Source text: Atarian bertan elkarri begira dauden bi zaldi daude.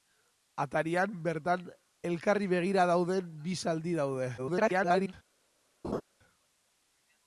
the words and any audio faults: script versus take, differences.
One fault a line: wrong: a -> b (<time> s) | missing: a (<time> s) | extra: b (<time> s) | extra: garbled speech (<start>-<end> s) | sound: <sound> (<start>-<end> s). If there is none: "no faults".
extra: garbled speech (4.4-5.1 s)
sound: laugh (5.8-6.0 s)